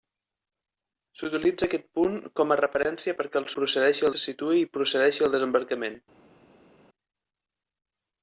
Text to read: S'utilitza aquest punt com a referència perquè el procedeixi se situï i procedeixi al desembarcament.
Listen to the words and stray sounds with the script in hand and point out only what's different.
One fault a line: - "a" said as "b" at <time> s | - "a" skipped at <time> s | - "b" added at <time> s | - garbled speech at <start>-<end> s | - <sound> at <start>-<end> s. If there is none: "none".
none